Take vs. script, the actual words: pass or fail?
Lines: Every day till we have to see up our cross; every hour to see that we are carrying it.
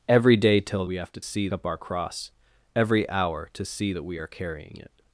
pass